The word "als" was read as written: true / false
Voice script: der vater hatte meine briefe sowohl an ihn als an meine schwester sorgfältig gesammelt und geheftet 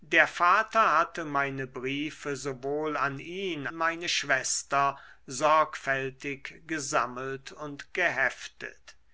false